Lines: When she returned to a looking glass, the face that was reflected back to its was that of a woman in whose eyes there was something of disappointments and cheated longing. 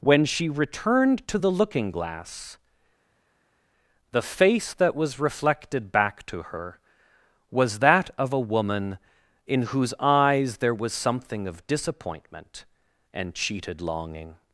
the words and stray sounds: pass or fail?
fail